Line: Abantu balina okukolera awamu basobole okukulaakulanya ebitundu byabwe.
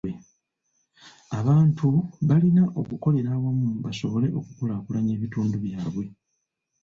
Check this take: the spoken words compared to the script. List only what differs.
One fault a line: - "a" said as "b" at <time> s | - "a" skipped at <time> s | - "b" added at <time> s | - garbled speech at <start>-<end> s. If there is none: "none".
none